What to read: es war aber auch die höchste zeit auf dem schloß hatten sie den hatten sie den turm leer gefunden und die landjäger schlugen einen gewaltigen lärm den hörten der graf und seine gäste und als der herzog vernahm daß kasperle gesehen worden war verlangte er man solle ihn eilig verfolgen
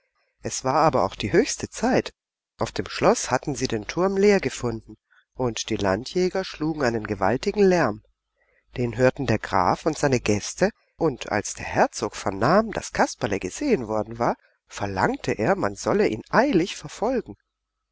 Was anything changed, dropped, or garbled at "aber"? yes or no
no